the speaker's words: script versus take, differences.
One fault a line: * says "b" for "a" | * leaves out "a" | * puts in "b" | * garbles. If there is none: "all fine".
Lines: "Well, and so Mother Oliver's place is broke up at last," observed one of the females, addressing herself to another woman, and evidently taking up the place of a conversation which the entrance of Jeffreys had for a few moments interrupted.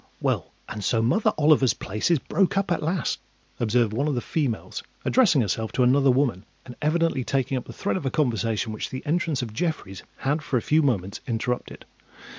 * says "thread" for "place"